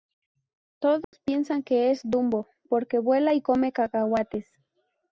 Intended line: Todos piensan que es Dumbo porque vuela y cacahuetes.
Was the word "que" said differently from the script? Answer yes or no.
no